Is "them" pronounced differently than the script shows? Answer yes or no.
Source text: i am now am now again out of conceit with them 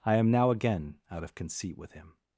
yes